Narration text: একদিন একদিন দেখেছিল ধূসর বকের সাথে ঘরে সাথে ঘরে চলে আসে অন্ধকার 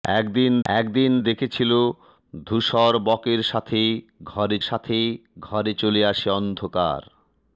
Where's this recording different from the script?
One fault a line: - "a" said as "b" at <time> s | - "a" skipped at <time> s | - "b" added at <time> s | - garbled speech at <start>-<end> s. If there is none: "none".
none